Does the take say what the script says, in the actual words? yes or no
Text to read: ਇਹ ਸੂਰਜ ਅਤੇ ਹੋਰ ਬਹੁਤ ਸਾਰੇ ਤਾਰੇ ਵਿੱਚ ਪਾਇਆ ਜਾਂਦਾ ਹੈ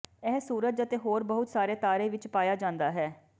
yes